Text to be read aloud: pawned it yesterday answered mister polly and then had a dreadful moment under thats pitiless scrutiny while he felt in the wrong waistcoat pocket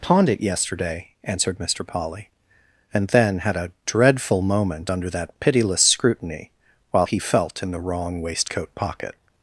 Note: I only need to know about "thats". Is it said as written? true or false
false